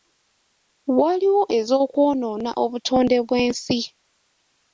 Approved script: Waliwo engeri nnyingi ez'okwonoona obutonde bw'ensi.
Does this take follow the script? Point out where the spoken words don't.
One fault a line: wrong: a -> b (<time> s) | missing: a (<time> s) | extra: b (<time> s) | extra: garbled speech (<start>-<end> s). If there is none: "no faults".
missing: engeri nnyingi (1.4 s)